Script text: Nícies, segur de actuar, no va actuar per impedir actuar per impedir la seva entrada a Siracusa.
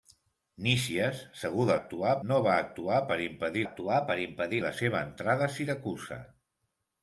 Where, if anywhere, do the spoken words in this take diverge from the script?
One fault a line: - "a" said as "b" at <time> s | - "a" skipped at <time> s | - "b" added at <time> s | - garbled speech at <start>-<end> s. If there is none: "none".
none